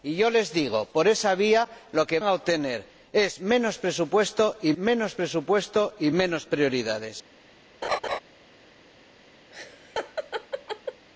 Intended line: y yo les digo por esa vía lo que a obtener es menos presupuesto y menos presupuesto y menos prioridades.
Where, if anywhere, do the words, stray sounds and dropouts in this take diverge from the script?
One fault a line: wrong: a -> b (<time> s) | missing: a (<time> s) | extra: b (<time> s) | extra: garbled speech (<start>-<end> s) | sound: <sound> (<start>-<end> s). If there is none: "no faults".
sound: laugh (7.8-8.2 s)
sound: laugh (9.5-11.1 s)